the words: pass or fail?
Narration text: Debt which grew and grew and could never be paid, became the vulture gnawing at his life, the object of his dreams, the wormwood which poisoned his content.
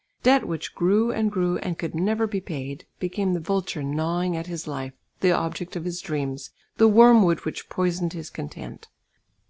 pass